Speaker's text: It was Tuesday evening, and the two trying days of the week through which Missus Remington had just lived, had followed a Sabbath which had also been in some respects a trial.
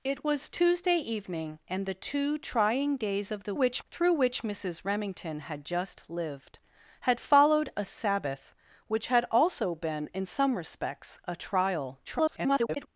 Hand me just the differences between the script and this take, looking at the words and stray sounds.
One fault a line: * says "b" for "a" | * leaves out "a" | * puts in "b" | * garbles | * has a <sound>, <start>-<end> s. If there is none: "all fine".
* says "which" for "week"
* garbles